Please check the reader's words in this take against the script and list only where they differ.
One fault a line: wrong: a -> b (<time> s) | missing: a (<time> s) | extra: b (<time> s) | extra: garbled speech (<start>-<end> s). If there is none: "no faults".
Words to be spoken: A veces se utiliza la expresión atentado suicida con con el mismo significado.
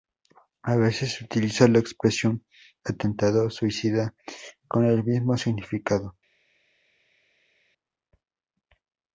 missing: con (4.8 s)